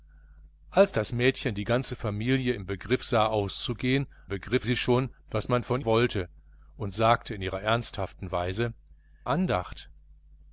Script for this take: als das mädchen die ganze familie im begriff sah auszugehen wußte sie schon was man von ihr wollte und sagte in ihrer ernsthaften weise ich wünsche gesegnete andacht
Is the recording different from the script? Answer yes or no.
yes